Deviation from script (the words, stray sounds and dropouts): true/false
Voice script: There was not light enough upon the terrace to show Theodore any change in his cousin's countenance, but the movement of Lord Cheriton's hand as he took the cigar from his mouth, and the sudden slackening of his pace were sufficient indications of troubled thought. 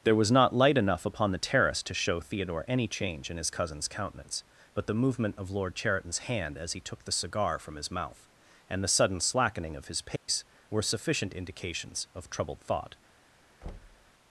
true